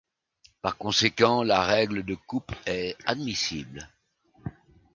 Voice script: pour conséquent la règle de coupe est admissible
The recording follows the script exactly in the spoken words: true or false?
false